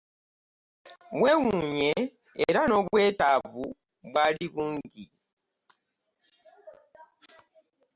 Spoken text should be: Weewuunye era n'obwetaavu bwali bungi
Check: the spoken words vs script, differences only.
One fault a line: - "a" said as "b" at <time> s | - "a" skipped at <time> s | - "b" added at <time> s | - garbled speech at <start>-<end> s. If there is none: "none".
none